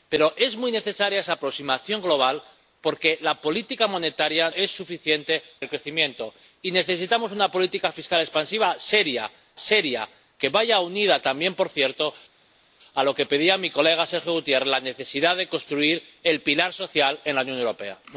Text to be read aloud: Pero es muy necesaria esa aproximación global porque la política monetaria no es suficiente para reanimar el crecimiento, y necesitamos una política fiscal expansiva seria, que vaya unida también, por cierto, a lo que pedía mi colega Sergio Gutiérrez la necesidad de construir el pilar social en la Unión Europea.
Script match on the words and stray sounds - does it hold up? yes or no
no